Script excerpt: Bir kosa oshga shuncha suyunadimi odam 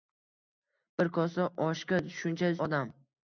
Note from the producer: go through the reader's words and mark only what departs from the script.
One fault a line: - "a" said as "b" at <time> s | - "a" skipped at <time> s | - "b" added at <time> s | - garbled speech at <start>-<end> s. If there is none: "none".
- "suyunadimi" skipped at 2.5 s